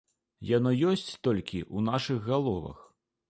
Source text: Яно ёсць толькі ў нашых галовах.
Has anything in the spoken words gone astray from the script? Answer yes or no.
no